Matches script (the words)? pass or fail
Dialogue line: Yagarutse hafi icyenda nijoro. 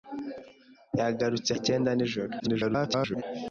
fail